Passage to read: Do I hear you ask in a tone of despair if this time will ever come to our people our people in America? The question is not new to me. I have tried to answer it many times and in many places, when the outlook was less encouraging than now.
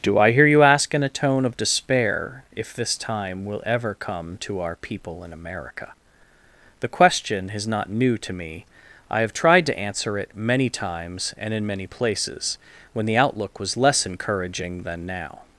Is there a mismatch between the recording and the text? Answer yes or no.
yes